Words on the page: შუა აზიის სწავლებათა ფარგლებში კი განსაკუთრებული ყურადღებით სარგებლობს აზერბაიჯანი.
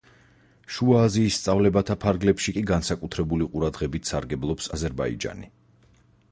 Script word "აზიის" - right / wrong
right